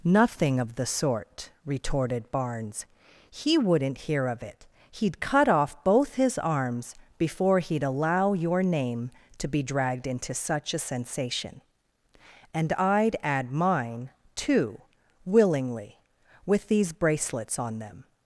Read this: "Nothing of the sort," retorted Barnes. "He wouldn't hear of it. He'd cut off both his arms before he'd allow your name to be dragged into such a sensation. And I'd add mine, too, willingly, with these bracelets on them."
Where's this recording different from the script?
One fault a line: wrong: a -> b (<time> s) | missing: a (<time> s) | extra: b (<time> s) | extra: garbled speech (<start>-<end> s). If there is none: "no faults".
no faults